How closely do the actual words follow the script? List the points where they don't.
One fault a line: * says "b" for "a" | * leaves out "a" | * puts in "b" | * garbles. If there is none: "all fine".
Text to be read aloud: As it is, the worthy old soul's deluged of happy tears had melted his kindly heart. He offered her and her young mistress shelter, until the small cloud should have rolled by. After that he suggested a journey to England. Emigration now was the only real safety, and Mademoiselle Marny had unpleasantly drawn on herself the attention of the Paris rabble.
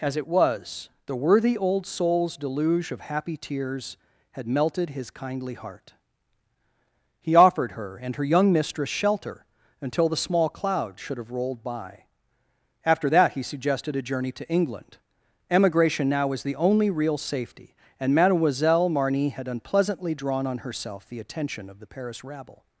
* says "was" for "is"
* says "deluge" for "deluged"